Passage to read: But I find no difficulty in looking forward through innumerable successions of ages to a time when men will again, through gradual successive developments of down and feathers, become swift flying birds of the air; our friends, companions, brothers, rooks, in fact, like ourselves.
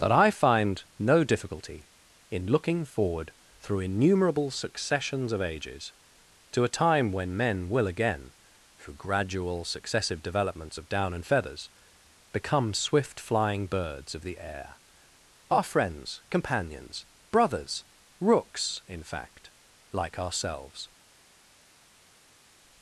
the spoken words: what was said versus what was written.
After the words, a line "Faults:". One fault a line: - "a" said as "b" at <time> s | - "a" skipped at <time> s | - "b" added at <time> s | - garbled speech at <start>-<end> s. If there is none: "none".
That I find no difficulty in looking forward through innumerable successions of ages to a time when men will again, through gradual successive developments of down and feathers, become swift flying birds of the air; our friends, companions, brothers, rooks, in fact, like ourselves.
Faults:
- "But" said as "That" at 0.0 s